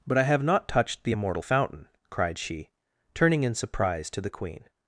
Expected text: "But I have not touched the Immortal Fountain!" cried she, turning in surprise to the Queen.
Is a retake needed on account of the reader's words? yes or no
no